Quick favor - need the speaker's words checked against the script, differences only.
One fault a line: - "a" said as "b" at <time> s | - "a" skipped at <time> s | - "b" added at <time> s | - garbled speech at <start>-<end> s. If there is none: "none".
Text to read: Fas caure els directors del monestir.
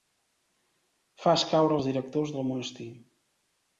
none